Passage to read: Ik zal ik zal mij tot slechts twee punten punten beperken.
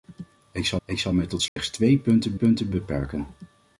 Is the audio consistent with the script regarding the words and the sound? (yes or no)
no